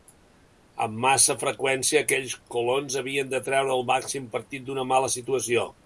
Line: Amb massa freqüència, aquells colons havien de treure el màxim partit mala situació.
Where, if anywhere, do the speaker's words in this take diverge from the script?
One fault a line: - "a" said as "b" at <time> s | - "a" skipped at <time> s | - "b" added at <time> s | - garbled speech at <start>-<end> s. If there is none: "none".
- "d'una" added at 4.7 s